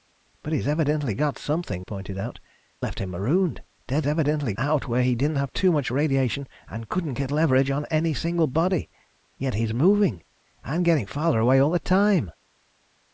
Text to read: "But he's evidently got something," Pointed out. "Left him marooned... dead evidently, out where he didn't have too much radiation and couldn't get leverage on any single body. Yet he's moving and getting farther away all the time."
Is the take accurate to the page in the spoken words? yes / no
yes